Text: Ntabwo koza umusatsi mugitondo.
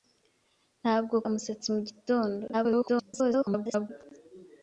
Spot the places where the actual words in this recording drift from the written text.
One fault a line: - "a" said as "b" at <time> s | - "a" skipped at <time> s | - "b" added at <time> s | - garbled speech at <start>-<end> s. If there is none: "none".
- "koza" skipped at 1.1 s
- garbled speech at 2.5-3.9 s